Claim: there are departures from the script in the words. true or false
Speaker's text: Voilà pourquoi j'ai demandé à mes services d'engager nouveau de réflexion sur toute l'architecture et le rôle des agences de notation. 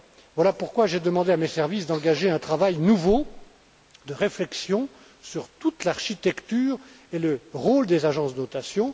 true